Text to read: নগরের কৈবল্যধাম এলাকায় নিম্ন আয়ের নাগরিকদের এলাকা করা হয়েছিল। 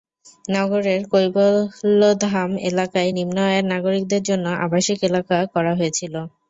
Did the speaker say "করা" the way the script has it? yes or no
yes